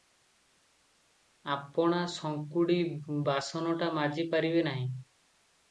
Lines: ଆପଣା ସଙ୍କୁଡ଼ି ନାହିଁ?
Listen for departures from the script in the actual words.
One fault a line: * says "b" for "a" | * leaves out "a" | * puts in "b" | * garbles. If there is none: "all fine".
* puts in "ବାସନଟା ମାଜି ପାରିବେ"